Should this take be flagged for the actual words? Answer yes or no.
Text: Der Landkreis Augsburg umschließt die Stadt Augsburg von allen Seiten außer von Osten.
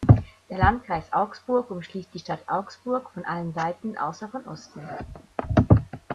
no